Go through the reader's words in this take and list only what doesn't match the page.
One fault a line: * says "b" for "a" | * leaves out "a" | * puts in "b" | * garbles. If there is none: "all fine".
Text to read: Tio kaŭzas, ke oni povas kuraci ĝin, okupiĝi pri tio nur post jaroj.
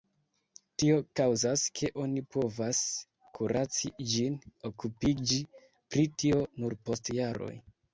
all fine